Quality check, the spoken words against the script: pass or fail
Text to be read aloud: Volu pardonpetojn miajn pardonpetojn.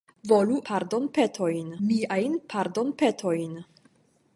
pass